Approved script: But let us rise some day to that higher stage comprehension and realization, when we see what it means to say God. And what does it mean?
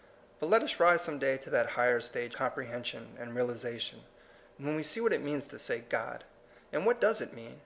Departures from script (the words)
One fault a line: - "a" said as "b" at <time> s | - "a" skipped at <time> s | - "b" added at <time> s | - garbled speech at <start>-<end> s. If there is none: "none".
none